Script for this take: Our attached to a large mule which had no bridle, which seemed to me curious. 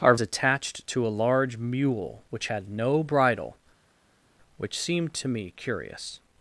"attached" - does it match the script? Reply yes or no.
yes